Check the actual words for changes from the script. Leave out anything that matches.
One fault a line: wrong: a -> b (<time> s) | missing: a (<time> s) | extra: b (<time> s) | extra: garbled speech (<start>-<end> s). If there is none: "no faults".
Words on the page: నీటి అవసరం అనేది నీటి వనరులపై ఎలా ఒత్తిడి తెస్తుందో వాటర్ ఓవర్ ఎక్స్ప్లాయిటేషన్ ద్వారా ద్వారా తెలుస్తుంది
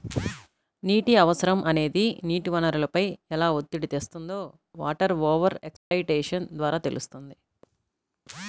missing: ద్వారా (6.8 s)